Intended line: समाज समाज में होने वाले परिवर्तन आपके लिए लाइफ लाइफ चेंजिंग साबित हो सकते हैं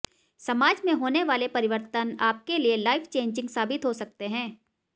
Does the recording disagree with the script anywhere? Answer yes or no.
yes